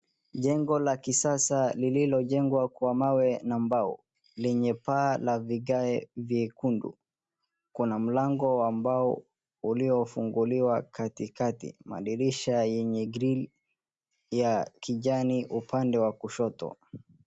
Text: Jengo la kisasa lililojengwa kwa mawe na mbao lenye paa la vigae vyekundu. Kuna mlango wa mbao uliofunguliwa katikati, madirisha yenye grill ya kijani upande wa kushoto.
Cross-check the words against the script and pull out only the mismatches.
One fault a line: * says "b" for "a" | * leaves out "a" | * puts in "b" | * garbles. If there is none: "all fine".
all fine